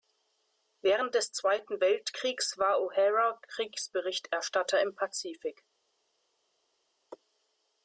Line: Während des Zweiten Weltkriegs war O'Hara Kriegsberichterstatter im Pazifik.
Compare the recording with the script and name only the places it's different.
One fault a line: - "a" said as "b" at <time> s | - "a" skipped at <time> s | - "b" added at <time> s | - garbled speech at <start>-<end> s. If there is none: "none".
none